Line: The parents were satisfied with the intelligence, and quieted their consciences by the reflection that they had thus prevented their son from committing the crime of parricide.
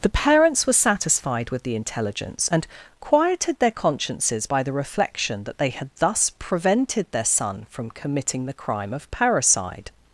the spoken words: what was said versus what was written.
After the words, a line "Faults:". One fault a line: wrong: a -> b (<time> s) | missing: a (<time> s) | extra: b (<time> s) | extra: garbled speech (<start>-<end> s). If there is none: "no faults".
The parents were satisfied with the intelligence, and quieted their consciences by the reflection that they had thus prevented their son from committing the crime of parricide.
Faults:
no faults